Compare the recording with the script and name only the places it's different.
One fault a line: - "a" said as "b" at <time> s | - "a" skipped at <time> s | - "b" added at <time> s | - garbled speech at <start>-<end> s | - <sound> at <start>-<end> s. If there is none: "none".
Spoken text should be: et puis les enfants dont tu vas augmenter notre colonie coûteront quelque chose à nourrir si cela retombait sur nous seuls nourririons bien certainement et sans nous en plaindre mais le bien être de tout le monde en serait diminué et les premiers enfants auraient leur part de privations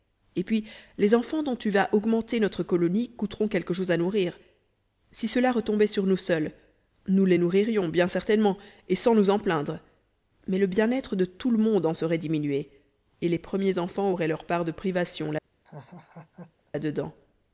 - "nous les" added at 7.1 s
- laugh at 15.6-16.7 s